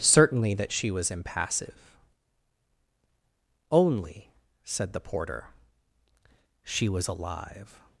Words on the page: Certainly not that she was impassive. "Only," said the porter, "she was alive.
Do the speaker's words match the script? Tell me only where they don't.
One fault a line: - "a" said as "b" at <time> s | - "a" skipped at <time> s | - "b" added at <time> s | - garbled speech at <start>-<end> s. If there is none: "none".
- "not" skipped at 0.6 s